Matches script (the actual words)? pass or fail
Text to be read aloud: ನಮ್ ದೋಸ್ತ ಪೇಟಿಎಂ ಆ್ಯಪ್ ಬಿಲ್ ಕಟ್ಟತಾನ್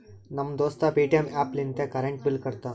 fail